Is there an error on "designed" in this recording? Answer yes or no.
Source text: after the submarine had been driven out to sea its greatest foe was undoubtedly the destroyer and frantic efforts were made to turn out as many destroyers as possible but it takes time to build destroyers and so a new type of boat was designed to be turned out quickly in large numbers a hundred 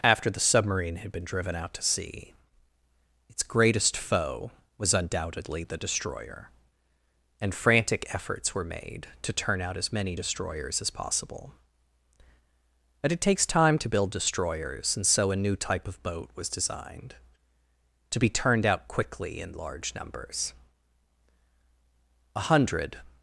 no